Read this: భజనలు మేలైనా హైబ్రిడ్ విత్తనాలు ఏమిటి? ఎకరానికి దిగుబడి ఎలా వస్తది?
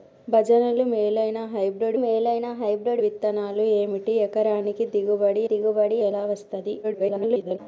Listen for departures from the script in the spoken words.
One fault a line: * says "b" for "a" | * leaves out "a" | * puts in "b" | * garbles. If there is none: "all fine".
* puts in "మేలైనా హైబ్రిడ్"
* puts in "దిగుబడి"
* garbles